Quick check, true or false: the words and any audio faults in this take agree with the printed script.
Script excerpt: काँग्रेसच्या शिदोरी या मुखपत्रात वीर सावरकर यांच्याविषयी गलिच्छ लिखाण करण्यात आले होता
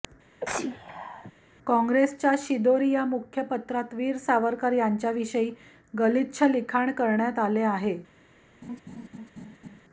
false